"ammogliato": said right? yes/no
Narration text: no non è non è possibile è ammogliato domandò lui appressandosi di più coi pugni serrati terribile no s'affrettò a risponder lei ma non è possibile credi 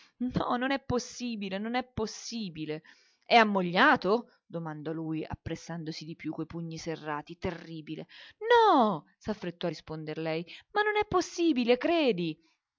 yes